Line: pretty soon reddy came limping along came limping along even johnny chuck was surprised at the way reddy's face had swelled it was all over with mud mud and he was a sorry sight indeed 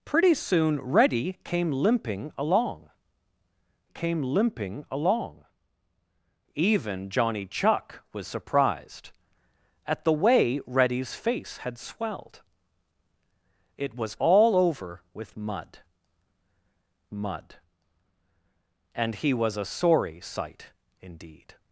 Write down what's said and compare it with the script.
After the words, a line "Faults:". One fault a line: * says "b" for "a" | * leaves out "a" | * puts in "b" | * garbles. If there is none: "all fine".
pretty soon reddy came limping along came limping along even johnny chuck was surprised at the way reddy's face had swelled it was all over with mud mud and he was a sorry sight indeed
Faults:
all fine